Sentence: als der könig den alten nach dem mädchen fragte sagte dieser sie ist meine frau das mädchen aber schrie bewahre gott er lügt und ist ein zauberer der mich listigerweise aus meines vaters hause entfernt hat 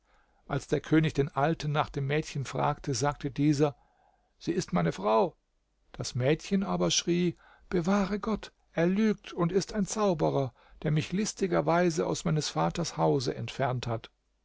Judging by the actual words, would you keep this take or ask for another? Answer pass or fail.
pass